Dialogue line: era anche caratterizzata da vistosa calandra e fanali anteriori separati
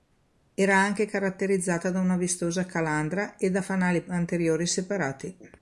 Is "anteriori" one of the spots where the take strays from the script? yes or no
no